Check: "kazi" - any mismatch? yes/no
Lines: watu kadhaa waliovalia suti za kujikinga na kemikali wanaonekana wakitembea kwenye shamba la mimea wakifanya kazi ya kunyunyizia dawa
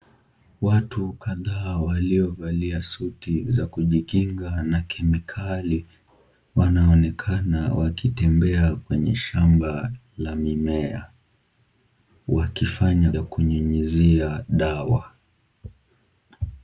yes